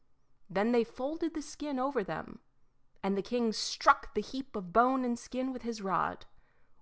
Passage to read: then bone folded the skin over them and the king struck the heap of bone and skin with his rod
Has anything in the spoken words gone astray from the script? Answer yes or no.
yes